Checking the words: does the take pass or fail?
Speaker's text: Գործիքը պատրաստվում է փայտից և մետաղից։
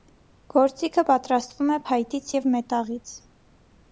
pass